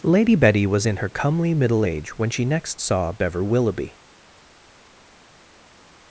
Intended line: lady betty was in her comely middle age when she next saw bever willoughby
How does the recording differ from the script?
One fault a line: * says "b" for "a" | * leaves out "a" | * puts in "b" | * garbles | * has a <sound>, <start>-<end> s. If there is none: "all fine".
all fine